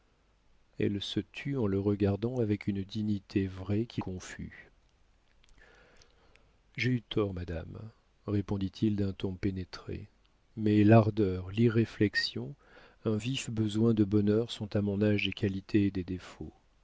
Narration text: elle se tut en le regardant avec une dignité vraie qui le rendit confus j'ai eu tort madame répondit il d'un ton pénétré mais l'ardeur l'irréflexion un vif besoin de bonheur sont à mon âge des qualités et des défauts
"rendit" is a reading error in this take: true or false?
true